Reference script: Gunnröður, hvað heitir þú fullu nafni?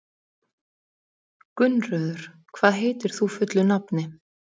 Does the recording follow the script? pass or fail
pass